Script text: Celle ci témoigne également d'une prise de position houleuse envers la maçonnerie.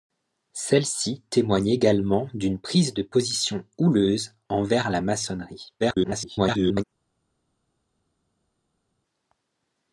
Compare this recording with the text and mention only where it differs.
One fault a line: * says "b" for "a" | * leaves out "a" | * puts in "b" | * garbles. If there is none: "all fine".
* garbles